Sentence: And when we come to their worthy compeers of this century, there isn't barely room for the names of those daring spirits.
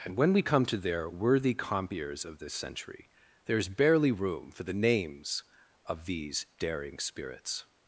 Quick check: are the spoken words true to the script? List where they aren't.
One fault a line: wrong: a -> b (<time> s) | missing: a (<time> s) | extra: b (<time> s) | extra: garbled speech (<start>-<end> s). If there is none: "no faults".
wrong: isn't -> is (3.6 s)
wrong: those -> these (6.0 s)